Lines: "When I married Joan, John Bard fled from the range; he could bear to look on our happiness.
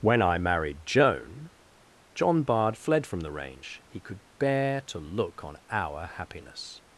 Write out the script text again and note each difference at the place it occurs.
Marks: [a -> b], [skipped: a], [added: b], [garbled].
"When I married Joan, John Bard fled from the range; he could bear to look on our happiness.